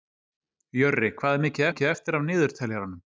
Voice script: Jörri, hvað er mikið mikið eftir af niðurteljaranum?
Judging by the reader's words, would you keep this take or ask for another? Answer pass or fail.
pass